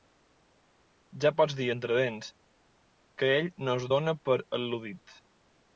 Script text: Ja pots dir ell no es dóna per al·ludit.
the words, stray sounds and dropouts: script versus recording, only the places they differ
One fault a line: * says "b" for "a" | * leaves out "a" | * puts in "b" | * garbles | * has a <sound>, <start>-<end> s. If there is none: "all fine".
* puts in "entre dents que"